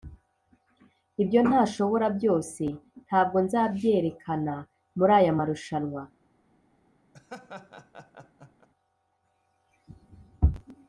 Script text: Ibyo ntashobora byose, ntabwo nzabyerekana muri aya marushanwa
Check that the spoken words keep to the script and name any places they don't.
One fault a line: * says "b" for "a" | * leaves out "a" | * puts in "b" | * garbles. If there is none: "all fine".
all fine